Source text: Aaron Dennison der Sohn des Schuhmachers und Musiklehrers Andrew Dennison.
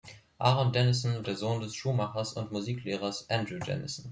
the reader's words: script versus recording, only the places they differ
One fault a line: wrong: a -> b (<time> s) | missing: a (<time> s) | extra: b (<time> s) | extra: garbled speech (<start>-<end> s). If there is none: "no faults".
no faults